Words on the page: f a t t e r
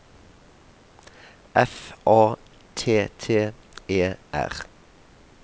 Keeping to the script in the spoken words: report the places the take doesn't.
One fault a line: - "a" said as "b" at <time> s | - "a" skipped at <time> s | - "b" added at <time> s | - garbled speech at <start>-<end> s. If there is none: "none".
none